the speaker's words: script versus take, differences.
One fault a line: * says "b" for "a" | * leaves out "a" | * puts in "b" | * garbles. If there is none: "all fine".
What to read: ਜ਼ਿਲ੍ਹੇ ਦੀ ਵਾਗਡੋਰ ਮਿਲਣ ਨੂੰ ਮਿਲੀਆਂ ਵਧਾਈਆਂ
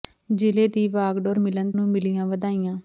all fine